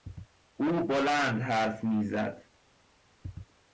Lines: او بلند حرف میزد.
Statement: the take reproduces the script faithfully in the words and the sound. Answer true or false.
true